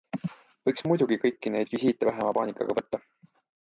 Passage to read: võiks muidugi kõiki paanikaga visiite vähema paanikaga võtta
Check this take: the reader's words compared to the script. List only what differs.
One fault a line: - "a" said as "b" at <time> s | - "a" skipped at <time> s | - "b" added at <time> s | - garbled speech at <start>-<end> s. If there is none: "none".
- "paanikaga" said as "neid" at 1.6 s